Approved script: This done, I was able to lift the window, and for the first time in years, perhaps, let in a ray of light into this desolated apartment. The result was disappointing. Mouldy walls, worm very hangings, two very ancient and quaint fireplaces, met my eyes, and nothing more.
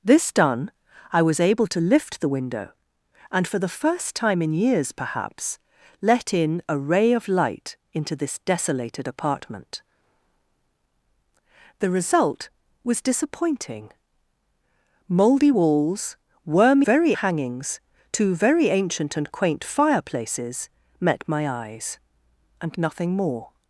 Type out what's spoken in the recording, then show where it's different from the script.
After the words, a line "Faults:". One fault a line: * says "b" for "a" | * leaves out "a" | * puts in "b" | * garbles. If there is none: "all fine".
This done, I was able to lift the window, and for the first time in years, perhaps, let in a ray of light into this desolated apartment. The result was disappointing. Mouldy walls, worm very hangings, two very ancient and quaint fireplaces, met my eyes, and nothing more.
Faults:
all fine